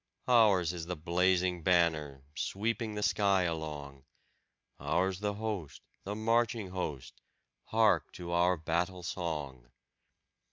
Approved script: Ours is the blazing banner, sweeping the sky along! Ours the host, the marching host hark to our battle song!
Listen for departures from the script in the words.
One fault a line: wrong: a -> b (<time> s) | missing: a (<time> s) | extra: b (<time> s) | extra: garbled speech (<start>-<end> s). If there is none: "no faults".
no faults